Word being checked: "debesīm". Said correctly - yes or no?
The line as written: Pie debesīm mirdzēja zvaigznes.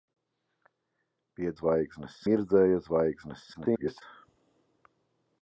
no